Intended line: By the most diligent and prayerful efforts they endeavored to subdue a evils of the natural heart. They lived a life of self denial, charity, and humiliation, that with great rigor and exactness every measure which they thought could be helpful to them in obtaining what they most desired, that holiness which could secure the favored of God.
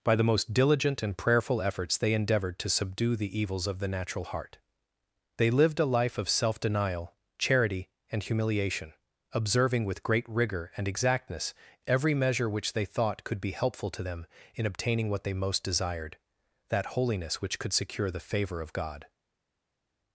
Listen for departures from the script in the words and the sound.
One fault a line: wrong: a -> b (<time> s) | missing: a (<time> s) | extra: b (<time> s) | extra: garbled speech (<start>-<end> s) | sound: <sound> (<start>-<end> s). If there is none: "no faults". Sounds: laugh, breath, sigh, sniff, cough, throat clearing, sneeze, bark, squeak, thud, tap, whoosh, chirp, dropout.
wrong: a -> the (3.1 s)
wrong: that -> observing (9.3 s)
wrong: favored -> favor (18.2 s)